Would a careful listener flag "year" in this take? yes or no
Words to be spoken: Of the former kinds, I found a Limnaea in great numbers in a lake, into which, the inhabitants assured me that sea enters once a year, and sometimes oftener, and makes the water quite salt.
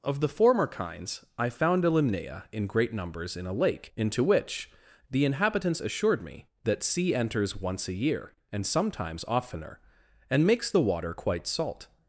no